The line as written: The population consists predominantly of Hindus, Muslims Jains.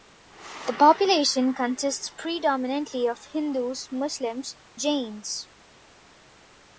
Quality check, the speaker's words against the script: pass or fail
pass